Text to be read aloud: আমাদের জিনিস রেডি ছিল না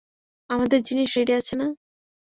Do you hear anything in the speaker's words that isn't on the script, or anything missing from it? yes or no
yes